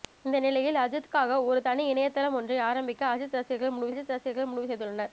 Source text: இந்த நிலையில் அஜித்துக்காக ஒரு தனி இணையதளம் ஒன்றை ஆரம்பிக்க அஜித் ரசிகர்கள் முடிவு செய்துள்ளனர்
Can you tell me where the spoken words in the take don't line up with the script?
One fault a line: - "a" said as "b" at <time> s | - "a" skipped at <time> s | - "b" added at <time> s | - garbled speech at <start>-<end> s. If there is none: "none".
- "அஜித் ரசிகர்கள் முடிவு" added at 3.9 s